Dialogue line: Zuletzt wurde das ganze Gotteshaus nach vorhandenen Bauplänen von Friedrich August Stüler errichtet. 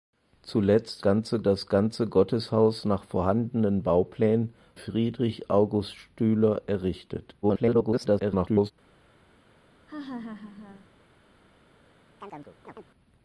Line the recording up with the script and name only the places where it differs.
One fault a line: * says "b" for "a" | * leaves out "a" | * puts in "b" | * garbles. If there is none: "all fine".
* says "ganze" for "wurde"
* leaves out "von"
* garbles